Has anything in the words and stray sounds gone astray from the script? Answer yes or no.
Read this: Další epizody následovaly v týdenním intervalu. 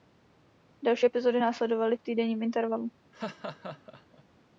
yes